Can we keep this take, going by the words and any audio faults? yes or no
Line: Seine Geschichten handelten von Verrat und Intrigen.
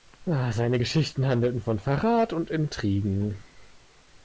yes